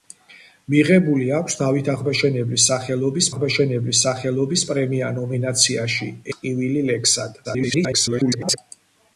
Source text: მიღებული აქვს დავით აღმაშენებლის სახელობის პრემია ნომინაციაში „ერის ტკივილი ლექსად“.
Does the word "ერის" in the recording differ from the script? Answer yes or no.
yes